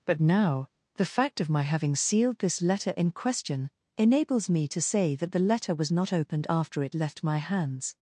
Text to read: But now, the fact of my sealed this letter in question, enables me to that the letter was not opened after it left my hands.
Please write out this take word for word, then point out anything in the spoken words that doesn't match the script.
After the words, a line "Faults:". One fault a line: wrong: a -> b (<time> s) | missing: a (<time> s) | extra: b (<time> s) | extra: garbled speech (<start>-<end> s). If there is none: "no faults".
But now, the fact of my having sealed this letter in question, enables me to say that the letter was not opened after it left my hands.
Faults:
extra: having (1.6 s)
extra: say (4.8 s)